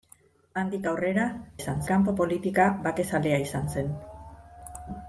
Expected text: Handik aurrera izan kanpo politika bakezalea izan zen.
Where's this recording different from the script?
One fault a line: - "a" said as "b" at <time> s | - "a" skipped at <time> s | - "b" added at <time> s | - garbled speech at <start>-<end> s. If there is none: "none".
none